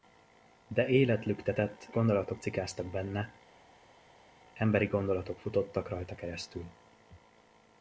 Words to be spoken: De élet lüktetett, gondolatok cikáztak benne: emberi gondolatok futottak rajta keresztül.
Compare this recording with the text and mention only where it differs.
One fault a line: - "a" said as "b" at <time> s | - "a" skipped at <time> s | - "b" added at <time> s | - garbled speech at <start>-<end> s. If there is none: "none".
none